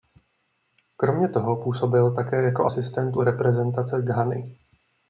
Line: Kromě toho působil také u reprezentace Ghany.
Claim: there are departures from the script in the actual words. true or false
true